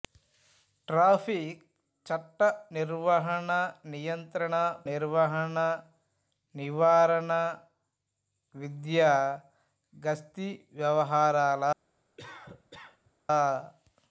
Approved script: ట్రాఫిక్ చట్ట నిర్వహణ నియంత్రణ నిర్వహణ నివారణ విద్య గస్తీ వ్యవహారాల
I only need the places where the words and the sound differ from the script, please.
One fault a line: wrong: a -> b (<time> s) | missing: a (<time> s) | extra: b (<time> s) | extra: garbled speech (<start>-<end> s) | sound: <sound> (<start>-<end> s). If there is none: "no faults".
sound: cough (12.2-13.1 s)